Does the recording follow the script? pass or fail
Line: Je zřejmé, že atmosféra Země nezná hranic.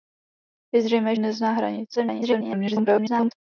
fail